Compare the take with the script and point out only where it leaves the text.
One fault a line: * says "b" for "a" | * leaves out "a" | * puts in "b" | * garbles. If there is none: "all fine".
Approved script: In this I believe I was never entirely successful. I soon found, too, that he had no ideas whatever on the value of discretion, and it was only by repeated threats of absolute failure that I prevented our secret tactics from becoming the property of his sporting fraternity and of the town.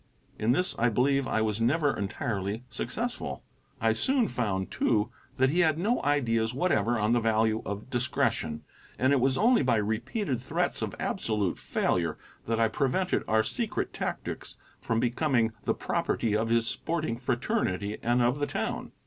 all fine